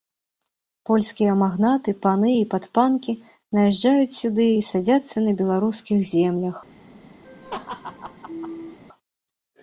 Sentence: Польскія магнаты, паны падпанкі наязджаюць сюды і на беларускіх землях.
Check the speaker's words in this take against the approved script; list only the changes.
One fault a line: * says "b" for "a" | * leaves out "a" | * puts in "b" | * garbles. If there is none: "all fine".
* puts in "і"
* puts in "садзяцца"